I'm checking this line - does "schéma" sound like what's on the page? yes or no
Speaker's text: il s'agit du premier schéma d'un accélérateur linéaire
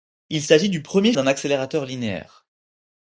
no